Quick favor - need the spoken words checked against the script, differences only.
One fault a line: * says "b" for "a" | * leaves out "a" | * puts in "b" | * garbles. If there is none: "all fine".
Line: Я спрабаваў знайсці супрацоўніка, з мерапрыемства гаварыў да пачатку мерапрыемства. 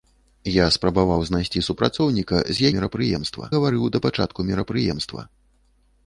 all fine